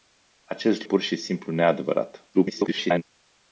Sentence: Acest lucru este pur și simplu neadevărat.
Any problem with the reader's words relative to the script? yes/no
yes